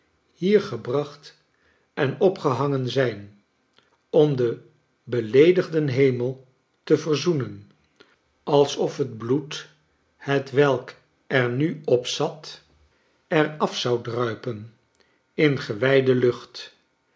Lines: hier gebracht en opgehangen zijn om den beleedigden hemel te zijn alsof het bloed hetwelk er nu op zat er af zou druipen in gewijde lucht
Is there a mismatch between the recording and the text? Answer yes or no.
yes